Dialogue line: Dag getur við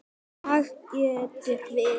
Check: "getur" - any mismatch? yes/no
no